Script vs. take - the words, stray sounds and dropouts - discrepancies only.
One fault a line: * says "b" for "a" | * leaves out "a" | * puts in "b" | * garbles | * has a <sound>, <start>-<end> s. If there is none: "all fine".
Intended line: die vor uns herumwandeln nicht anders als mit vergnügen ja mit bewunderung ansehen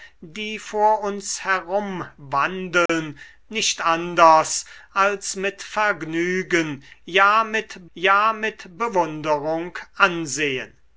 * has a dropout, 2.9-2.9 s
* puts in "ja mit"